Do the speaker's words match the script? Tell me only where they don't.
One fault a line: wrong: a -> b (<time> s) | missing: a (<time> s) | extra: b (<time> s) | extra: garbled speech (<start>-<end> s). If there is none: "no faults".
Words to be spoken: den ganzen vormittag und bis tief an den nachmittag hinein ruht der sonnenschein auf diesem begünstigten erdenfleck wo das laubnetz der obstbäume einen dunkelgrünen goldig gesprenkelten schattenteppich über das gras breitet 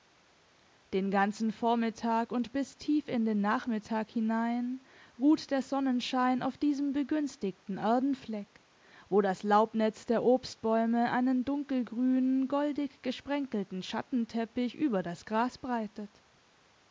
wrong: an -> in (3.1 s)